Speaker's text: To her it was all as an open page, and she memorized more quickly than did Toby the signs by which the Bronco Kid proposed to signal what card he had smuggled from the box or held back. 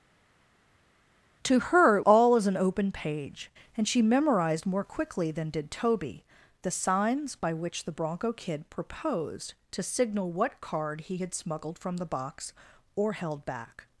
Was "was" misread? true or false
true